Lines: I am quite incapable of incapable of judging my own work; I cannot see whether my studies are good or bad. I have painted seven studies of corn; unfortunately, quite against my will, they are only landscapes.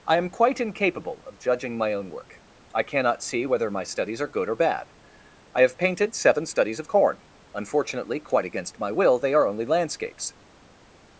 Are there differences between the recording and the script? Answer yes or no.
yes